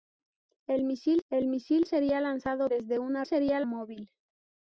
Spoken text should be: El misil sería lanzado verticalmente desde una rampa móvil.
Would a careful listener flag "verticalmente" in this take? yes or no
yes